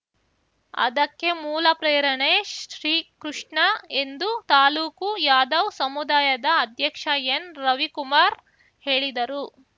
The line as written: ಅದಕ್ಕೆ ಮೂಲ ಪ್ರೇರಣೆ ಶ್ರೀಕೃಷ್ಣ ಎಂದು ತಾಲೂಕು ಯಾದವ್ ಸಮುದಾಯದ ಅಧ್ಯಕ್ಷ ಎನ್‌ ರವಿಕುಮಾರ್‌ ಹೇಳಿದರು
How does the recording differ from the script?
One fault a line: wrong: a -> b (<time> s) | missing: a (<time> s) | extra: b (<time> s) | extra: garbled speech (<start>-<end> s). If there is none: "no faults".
no faults